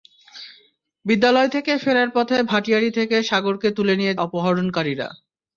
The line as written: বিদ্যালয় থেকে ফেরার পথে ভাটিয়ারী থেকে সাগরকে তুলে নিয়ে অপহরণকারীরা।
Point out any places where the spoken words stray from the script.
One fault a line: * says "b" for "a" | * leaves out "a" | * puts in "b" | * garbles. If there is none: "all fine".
all fine